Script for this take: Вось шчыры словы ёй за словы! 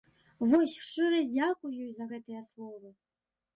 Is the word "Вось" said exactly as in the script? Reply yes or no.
yes